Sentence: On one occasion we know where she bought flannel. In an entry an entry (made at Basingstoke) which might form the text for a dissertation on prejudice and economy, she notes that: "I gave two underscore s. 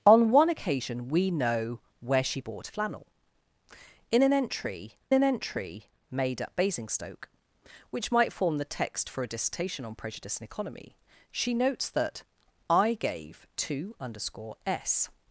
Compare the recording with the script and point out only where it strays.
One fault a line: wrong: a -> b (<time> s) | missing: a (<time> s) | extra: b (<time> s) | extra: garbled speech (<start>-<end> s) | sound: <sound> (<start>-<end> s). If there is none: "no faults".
no faults